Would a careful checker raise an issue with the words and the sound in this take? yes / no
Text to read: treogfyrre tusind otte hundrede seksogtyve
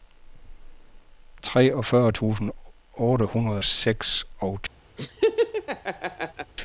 yes